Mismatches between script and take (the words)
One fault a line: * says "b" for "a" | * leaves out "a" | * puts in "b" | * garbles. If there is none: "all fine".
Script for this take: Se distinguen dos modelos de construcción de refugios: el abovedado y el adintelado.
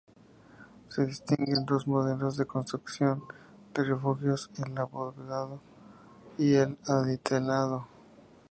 all fine